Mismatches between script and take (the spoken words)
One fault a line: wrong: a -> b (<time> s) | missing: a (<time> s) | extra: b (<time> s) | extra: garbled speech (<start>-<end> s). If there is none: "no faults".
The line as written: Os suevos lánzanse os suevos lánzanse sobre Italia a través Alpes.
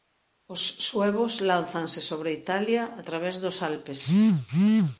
missing: os suevos lánzanse (2.0 s)
extra: dos (3.4 s)